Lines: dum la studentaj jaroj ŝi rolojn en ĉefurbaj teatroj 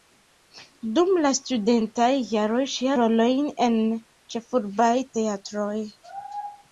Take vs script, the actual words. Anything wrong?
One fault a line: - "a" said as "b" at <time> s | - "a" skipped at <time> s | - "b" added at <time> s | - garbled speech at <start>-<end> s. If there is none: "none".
none